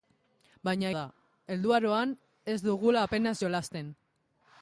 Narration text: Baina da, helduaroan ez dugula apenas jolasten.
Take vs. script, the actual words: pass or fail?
pass